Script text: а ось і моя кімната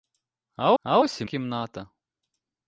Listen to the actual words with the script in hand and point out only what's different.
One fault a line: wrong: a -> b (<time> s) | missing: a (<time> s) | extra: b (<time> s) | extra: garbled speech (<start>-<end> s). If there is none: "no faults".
extra: а (0.8 s)
missing: моя (1.2 s)